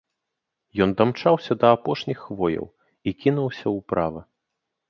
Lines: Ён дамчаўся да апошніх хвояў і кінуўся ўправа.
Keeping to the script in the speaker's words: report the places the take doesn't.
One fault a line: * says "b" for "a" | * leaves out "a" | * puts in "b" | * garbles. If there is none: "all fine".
all fine